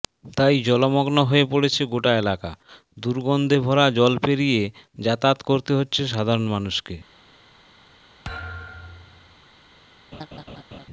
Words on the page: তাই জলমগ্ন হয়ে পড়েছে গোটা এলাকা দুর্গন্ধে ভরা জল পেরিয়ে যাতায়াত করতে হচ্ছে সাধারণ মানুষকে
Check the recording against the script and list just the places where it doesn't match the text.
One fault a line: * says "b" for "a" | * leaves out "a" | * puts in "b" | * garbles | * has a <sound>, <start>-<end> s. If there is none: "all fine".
* has a thud, 8.2-9.4 s
* has a laugh, 10.1-10.9 s